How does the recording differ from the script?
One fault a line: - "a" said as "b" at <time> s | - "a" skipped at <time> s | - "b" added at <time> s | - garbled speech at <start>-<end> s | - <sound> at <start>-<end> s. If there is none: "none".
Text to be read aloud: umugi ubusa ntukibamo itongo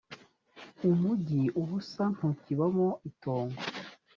none